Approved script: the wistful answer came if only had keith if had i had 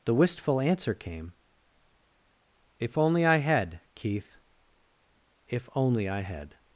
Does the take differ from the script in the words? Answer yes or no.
yes